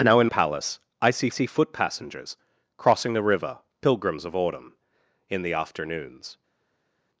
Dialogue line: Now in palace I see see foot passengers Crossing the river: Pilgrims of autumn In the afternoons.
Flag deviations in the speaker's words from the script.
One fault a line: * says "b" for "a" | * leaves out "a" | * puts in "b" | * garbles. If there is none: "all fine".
all fine